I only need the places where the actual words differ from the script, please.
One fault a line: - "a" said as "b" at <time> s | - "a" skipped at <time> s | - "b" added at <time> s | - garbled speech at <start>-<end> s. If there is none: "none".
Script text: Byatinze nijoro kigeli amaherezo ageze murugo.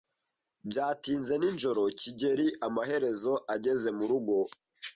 none